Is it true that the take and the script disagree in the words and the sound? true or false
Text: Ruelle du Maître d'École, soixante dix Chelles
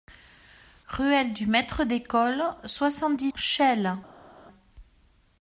false